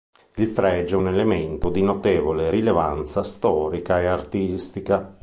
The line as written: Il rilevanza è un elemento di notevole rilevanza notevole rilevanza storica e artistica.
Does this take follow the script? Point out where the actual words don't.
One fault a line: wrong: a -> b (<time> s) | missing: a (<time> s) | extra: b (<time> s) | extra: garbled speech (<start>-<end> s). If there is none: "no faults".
wrong: rilevanza -> fregio (0.5 s)
missing: notevole rilevanza (3.2 s)